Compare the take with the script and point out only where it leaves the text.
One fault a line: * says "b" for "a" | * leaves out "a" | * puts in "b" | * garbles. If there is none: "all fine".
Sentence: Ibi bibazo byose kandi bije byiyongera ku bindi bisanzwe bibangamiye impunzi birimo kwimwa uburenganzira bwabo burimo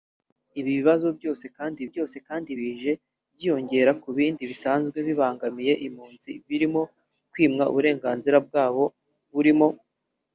* puts in "byose kandi"